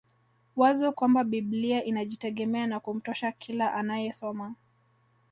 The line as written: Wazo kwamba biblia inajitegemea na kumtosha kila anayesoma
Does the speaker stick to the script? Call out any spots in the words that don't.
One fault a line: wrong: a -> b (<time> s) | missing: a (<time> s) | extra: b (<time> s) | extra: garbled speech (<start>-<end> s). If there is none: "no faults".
no faults